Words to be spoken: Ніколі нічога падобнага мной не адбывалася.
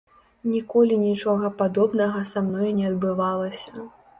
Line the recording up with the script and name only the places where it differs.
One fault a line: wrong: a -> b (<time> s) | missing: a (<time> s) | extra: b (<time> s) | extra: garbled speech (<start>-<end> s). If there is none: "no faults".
extra: са (2.3 s)